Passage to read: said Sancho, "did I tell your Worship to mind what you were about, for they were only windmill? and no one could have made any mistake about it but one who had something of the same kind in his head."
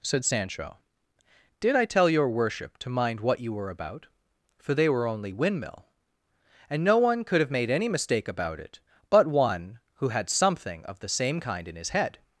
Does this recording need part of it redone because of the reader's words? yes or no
no